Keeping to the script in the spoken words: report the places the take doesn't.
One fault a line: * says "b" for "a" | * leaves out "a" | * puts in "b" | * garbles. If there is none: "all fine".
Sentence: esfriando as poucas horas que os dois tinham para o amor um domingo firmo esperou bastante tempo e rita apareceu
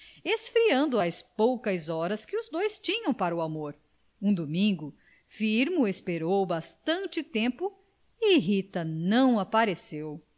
* puts in "não"